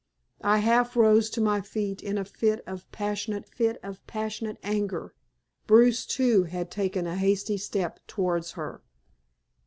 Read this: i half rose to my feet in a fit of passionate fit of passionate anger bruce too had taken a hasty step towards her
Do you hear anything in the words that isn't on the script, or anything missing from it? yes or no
no